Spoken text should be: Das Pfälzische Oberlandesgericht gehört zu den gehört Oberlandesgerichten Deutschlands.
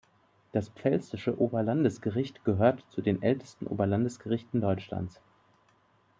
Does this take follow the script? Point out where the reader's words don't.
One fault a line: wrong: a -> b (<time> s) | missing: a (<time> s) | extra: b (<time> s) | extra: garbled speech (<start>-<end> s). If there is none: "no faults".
wrong: gehört -> ältesten (3.2 s)